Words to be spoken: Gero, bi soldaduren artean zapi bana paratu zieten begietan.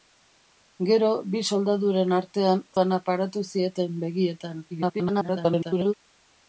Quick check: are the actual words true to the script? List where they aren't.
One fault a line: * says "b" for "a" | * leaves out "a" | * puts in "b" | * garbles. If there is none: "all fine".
* leaves out "zapi"
* garbles